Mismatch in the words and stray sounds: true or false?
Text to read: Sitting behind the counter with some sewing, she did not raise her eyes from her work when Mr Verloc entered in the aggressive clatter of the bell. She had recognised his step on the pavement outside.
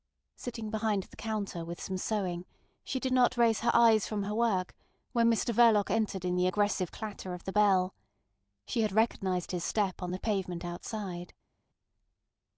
false